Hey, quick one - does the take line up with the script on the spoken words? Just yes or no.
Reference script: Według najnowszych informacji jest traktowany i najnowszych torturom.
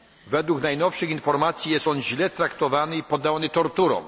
no